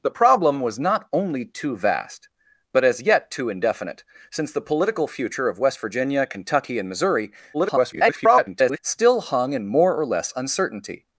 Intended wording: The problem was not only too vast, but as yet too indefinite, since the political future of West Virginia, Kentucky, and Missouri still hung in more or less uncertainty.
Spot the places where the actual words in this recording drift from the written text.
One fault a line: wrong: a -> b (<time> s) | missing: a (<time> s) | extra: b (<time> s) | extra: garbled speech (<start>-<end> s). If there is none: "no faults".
extra: garbled speech (7.5-8.8 s)